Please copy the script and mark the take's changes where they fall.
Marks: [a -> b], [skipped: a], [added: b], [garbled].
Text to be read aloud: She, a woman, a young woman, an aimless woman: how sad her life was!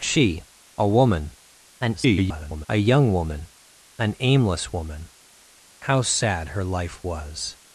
She, a woman, [garbled] a young woman, an aimless woman: how sad her life was!